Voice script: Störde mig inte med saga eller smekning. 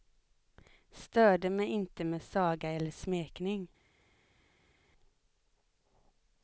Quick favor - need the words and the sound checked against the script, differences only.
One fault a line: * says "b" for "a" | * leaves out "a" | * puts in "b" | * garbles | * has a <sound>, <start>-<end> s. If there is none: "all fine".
all fine